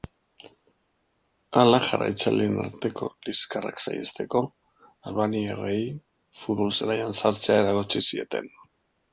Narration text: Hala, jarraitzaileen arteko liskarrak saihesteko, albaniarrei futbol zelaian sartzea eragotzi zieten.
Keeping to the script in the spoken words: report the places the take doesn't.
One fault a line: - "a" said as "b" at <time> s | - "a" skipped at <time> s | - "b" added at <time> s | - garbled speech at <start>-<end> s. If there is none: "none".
none